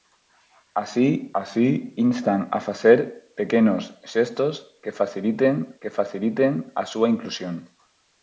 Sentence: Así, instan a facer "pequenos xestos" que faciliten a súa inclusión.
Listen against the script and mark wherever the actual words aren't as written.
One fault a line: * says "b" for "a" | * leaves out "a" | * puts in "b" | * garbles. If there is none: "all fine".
* puts in "así"
* puts in "que faciliten"